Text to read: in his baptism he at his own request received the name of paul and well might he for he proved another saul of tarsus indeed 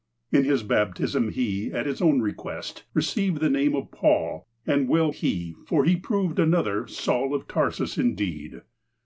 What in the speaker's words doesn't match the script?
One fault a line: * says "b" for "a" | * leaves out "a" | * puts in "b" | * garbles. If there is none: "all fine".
* leaves out "might"